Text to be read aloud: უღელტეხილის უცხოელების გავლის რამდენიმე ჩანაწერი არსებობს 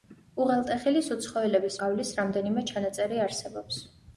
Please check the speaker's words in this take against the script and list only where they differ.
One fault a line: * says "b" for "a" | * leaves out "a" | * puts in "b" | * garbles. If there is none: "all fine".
all fine